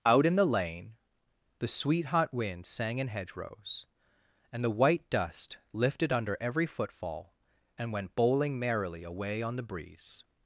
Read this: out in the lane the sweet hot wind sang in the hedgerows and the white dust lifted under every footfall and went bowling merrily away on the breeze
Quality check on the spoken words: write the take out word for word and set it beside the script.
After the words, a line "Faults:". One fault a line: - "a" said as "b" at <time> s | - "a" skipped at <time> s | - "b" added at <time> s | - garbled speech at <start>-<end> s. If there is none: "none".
out in the lane the sweet hot wind sang in hedgerows and the white dust lifted under every footfall and went bowling merrily away on the breeze
Faults:
- "the" skipped at 3.1 s